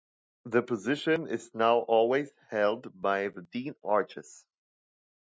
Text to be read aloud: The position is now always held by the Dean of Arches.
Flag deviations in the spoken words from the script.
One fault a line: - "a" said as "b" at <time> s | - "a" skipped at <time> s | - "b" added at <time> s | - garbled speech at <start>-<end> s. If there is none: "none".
- "of" skipped at 3.8 s